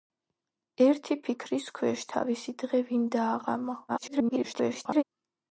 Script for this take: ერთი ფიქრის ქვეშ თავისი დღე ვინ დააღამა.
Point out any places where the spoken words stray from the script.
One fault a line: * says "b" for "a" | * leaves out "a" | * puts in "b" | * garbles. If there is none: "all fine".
* garbles